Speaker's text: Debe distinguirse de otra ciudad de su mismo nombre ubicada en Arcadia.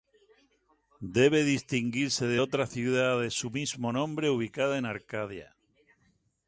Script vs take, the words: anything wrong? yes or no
no